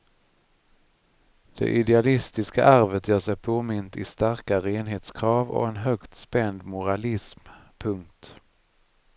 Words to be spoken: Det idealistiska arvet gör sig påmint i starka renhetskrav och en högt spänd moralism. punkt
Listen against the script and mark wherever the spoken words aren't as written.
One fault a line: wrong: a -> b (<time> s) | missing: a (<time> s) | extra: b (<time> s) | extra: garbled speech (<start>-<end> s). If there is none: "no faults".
no faults